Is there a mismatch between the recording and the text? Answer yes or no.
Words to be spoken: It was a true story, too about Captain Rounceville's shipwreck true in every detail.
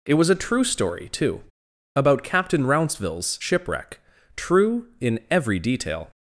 no